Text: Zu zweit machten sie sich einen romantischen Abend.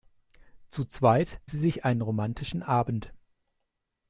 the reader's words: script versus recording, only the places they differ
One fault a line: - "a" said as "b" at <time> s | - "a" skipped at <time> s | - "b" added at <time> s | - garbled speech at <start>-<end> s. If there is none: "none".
- "machten" skipped at 1.4 s